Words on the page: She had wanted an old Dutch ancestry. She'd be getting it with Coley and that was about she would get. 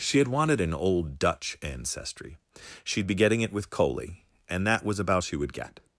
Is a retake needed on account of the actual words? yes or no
no